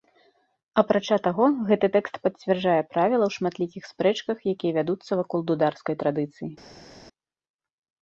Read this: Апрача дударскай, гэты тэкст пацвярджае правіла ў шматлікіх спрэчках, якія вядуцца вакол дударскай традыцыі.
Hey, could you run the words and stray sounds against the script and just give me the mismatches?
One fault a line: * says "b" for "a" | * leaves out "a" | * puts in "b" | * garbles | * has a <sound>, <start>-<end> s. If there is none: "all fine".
* says "таго" for "дударскай"